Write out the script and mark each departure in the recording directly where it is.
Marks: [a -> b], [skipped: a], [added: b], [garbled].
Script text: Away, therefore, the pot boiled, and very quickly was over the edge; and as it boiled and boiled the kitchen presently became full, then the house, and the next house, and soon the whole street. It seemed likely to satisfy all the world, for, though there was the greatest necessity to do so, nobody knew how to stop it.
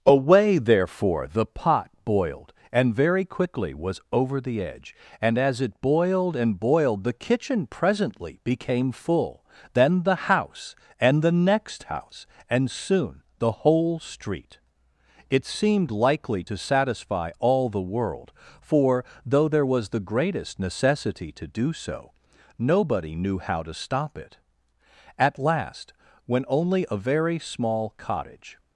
Away, therefore, the pot boiled, and very quickly was over the edge; and as it boiled and boiled the kitchen presently became full, then the house, and the next house, and soon the whole street. It seemed likely to satisfy all the world, for, though there was the greatest necessity to do so, nobody knew how to stop it. [added: At last when only a very small cottage]